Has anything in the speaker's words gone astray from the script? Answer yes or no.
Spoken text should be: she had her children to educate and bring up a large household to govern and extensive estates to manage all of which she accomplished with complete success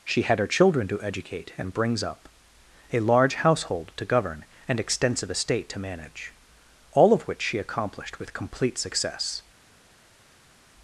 yes